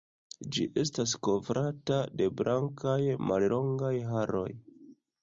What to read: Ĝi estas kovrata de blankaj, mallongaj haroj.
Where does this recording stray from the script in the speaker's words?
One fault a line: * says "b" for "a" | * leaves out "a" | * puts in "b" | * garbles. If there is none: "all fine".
all fine